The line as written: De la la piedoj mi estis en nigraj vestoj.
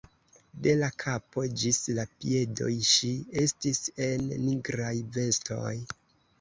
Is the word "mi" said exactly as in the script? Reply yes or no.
no